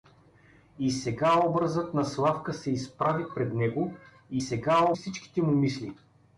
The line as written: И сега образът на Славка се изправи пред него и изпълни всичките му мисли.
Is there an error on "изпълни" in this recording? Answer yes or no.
yes